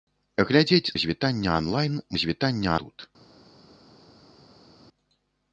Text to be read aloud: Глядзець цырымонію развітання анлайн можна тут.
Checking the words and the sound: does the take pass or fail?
fail